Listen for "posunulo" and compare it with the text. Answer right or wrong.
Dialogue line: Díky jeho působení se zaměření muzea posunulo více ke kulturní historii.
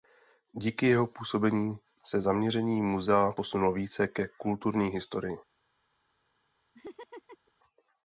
right